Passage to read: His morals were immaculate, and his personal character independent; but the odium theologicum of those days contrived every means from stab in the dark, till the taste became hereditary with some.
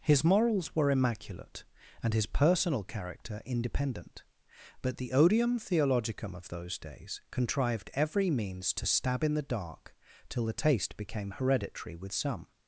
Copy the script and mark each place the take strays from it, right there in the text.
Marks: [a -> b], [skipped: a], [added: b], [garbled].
His morals were immaculate, and his personal character independent; but the odium theologicum of those days contrived every means [from -> to] stab in the dark, till the taste became hereditary with some.